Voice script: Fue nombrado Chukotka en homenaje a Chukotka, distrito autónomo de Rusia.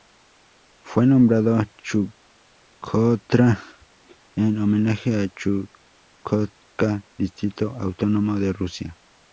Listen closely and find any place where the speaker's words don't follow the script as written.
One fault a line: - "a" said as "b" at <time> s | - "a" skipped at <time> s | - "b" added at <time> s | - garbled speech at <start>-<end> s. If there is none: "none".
none